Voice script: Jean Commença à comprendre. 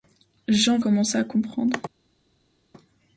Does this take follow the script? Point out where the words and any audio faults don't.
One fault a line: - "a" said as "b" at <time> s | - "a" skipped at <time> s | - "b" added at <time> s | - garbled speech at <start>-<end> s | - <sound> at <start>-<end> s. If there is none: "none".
none